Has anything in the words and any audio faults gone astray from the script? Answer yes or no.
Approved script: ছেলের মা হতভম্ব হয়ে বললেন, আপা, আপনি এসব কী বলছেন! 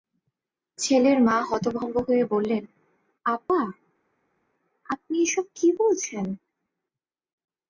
no